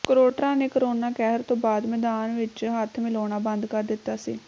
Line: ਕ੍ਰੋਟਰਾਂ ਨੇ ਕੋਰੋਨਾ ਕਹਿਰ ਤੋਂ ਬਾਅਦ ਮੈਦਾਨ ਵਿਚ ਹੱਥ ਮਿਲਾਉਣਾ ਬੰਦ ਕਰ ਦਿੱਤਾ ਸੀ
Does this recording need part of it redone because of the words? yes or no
no